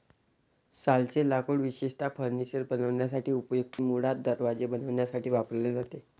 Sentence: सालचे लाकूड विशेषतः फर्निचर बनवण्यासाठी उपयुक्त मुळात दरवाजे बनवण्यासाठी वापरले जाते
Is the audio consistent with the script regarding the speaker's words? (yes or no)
yes